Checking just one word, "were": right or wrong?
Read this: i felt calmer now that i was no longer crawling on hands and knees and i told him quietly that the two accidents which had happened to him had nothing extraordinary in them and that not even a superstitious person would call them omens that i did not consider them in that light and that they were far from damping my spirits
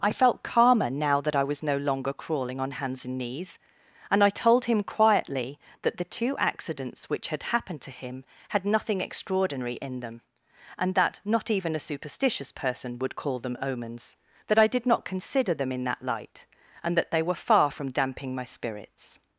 right